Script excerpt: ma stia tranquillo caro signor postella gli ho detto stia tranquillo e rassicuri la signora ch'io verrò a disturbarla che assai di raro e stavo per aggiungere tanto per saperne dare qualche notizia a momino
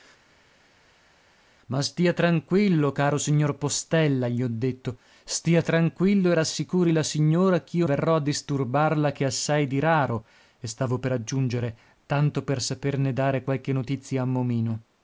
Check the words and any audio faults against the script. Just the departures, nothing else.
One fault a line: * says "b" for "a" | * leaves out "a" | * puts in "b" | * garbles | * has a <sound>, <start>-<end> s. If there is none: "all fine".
all fine